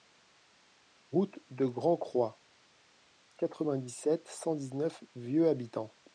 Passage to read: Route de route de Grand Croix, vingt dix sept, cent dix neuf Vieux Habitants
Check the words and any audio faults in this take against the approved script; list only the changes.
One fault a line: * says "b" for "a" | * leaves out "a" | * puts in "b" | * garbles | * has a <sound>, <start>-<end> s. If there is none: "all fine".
* leaves out "route de"
* puts in "quatre"